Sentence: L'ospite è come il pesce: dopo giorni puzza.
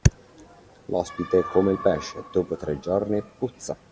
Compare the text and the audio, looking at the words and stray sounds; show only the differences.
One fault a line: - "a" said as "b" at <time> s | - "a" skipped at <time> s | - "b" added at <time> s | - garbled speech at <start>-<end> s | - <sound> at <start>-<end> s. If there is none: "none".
- "tre" added at 2.6 s